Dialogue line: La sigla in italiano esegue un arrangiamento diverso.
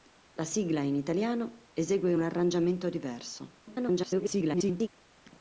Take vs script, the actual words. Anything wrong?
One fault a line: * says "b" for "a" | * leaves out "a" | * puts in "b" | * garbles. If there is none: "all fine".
* garbles